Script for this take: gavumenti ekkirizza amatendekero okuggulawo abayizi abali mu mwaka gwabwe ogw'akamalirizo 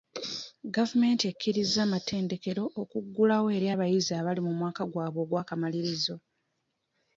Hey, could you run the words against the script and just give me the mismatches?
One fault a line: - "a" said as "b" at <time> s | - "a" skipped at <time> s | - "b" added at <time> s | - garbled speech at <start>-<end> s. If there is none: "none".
- "eri" added at 3.6 s